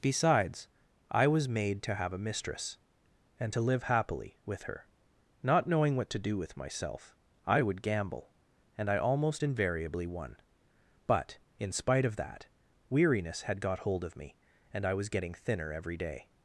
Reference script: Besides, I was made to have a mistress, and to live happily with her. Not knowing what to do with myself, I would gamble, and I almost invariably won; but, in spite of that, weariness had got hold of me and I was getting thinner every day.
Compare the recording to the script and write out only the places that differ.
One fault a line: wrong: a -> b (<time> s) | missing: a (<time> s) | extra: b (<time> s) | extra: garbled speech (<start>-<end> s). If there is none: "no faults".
no faults